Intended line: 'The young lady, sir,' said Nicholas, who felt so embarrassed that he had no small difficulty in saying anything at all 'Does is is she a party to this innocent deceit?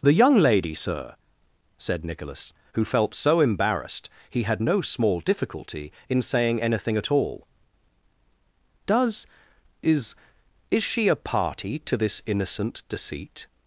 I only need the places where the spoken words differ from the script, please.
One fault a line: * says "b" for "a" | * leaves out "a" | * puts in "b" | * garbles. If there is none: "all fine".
* leaves out "that"